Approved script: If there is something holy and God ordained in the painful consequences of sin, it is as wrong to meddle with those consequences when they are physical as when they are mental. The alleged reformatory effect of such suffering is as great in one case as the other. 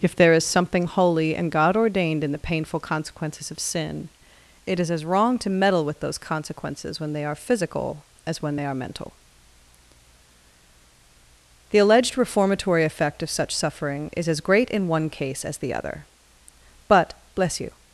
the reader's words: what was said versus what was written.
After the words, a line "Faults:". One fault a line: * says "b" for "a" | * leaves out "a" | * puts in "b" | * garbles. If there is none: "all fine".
If there is something holy and God ordained in the painful consequences of sin, it is as wrong to meddle with those consequences when they are physical as when they are mental. The alleged reformatory effect of such suffering is as great in one case as the other. But, bless you
Faults:
* puts in "But bless you"